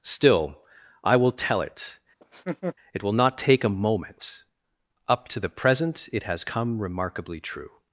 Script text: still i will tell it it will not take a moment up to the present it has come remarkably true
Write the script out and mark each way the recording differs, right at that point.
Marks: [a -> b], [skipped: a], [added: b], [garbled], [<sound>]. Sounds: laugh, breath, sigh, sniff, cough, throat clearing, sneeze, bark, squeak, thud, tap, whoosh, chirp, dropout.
still i will tell it [laugh] it will not take a moment up to the present it has come remarkably true